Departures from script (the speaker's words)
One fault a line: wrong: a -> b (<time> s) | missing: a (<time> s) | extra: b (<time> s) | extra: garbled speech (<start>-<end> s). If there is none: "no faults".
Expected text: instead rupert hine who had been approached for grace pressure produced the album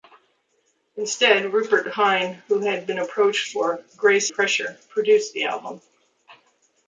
no faults